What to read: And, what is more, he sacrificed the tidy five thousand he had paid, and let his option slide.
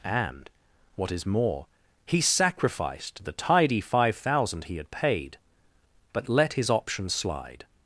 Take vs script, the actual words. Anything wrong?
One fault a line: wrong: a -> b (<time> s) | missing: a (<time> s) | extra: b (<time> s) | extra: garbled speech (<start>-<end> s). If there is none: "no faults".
wrong: and -> but (6.1 s)